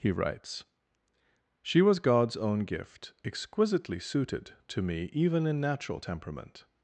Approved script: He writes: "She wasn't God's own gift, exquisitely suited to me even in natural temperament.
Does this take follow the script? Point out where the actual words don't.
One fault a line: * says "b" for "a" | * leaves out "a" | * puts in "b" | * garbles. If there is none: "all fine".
* says "was" for "wasn't"